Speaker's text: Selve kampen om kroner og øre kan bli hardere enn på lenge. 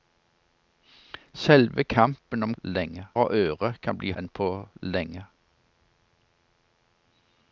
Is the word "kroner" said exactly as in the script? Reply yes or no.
no